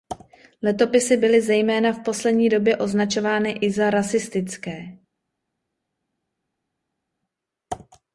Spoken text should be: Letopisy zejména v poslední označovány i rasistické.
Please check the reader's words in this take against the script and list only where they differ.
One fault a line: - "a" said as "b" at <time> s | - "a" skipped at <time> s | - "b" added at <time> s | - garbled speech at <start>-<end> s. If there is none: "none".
- "byly" added at 1.2 s
- "době" added at 2.5 s
- "za" added at 3.7 s